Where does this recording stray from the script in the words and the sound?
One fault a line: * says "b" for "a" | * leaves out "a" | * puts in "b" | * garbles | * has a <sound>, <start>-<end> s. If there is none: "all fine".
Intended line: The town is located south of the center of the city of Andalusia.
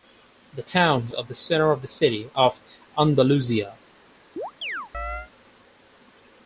* leaves out "is located south"
* has a chirp, 4.4-5.3 s